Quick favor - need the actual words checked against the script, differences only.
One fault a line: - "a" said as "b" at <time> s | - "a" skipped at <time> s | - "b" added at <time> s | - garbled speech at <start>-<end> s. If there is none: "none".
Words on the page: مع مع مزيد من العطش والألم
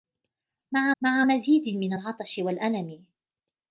none